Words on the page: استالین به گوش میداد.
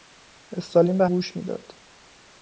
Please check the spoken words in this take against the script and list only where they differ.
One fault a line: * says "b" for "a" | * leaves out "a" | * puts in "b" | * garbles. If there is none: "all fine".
all fine